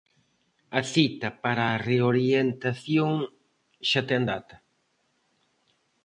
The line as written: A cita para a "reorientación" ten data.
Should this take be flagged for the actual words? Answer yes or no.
yes